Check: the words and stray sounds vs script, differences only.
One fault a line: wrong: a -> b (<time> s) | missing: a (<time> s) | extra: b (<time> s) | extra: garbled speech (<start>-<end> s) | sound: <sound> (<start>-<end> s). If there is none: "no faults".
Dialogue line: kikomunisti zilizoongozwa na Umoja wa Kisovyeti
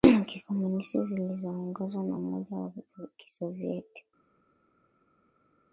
no faults